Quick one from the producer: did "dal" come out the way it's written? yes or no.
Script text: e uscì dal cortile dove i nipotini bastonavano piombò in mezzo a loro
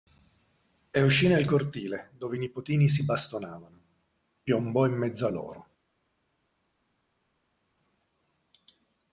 no